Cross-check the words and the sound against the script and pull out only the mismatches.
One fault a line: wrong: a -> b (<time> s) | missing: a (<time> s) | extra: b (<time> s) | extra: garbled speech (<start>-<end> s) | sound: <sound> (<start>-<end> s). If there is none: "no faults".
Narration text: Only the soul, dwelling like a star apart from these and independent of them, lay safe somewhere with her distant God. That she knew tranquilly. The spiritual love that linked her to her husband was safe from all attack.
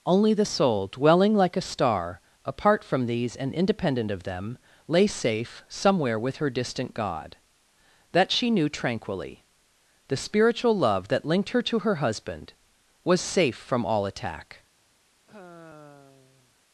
sound: sigh (15.3-16.6 s)